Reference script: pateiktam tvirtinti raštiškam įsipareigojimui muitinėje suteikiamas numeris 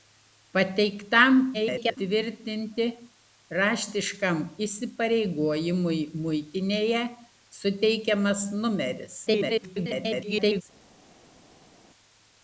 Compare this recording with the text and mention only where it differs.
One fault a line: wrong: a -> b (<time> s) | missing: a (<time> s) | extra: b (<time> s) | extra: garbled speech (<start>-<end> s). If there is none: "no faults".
extra: garbled speech (1.5-2.0 s)
extra: garbled speech (9.3-10.6 s)